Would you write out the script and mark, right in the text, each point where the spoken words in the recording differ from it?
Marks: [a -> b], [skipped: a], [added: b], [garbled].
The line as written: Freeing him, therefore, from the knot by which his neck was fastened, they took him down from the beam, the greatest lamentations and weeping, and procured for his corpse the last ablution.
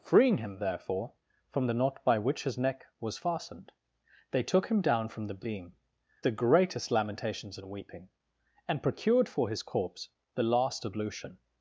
Freeing him, therefore, from the knot by which his neck was fastened, they took him down from the beam, the greatest lamentations and weeping, and procured for his corpse the last ablution.